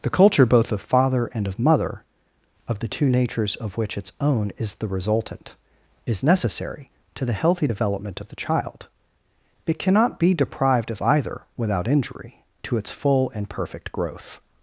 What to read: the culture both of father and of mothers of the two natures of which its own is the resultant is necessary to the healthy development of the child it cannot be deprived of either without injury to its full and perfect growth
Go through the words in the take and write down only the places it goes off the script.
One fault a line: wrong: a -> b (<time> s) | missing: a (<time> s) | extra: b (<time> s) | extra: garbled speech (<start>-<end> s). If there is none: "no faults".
wrong: mothers -> mother (1.6 s)